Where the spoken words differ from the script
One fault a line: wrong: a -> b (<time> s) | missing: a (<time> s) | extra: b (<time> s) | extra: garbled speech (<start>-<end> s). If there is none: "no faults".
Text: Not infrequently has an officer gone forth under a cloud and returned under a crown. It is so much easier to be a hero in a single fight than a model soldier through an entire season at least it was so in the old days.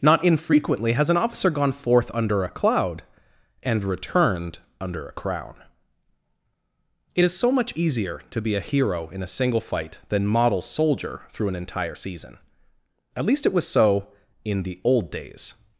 missing: a (10.3 s)